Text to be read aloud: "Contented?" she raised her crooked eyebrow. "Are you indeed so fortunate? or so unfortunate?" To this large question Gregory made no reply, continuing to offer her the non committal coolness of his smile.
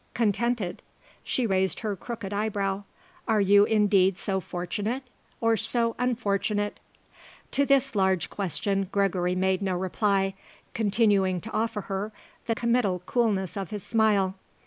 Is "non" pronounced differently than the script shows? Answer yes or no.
yes